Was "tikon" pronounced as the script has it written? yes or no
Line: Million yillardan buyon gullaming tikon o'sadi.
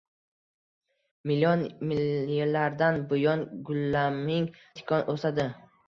yes